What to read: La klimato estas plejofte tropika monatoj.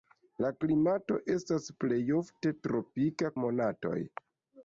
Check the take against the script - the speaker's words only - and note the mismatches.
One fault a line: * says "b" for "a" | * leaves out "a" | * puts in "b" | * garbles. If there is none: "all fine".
all fine